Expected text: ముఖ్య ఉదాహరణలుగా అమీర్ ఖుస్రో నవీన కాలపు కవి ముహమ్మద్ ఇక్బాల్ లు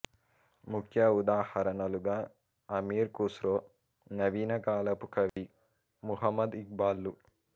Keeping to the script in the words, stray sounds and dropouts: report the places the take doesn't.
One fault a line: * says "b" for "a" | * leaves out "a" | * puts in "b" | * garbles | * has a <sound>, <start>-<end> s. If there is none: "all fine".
* has a dropout, 5.3-5.4 s